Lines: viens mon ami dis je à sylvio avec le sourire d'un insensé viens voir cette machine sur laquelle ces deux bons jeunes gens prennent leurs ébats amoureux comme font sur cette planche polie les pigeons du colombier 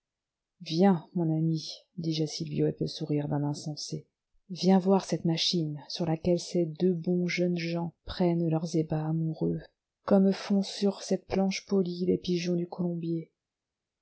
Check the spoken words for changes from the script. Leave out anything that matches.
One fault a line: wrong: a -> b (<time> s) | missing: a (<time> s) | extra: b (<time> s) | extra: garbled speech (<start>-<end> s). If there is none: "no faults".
no faults